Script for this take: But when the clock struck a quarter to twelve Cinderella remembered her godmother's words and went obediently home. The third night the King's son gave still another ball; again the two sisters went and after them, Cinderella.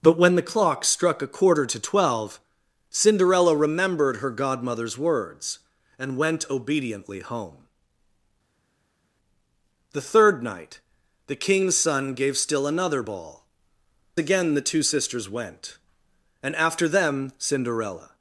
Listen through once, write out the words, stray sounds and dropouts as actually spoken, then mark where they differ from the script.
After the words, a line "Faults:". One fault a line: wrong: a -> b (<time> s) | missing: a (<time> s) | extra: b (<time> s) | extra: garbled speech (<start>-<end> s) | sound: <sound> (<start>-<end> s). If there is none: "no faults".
But when the clock struck a quarter to twelve Cinderella remembered her godmother's words and went obediently home. The third night the King's son gave still another ball; again the two sisters went and after them, Cinderella.
Faults:
no faults